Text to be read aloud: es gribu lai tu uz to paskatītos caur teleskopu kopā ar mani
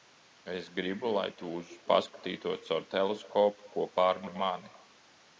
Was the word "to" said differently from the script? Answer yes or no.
yes